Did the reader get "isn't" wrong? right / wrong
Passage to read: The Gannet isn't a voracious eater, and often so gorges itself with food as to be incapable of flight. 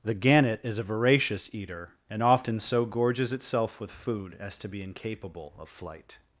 wrong